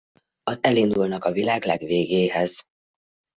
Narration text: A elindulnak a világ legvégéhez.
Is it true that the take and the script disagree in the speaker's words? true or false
false